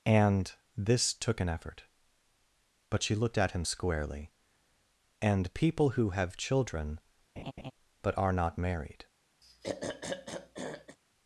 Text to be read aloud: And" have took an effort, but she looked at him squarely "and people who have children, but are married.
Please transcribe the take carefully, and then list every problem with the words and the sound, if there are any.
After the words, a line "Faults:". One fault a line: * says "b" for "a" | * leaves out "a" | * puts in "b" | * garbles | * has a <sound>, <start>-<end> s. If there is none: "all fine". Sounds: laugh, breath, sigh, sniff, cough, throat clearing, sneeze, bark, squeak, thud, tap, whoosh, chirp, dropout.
And" this took an effort, but she looked at him squarely "and people who have children, but are not married.
Faults:
* says "this" for "have"
* has a laugh, 7.4-7.7 s
* puts in "not"
* has a throat clearing, 9.4-11.0 s